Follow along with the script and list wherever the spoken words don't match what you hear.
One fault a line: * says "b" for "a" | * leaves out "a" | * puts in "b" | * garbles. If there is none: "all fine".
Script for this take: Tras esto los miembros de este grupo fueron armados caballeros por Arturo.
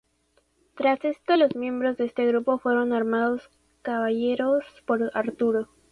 all fine